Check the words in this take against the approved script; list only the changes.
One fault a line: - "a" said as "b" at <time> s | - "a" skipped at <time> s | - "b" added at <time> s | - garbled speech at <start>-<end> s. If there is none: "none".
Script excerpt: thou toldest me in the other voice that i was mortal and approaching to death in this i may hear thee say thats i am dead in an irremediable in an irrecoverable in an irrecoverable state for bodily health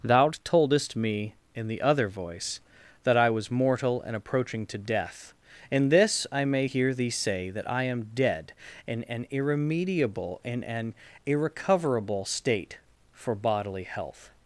- "thats" said as "that" at 7.5 s
- "in an irrecoverable" skipped at 12.3 s